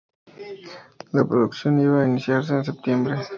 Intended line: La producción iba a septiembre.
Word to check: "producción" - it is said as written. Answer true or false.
true